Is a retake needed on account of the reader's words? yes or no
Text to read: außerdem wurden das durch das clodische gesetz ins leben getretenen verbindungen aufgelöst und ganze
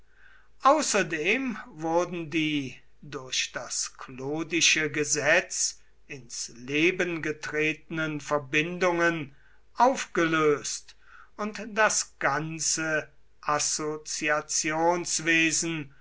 yes